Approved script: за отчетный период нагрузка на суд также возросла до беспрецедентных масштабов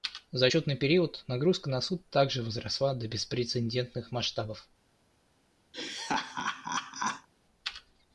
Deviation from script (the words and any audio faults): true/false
true